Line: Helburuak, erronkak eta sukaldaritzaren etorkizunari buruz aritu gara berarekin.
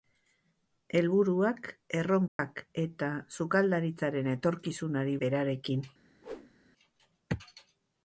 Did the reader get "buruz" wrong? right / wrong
wrong